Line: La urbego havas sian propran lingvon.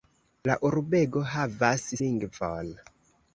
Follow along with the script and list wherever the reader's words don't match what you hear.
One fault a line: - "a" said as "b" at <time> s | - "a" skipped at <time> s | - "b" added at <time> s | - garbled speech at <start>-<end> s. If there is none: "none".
- "sian propran" skipped at 1.8 s